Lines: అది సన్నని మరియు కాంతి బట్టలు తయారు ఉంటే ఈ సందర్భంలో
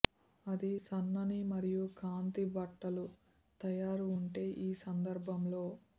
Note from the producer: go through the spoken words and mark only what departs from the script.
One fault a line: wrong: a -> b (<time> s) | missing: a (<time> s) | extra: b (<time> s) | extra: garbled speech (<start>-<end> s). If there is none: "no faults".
no faults